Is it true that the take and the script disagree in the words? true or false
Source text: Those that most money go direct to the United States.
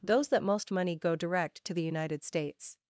false